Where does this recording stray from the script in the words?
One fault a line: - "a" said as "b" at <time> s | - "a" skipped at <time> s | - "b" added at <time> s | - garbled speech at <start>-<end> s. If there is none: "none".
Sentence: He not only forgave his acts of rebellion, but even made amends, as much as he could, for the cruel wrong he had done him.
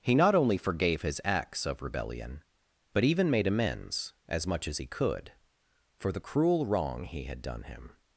none